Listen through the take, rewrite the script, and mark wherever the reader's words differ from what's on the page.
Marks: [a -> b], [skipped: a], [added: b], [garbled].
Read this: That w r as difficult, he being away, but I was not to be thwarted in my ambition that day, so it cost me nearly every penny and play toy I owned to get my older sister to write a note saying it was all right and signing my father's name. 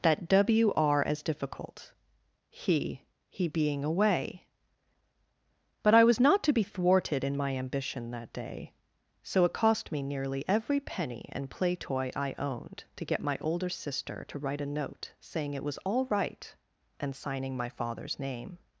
That w r as difficult, he [added: he] being away, but I was not to be thwarted in my ambition that day, so it cost me nearly every penny and play toy I owned to get my older sister to write a note saying it was all right and signing my father's name.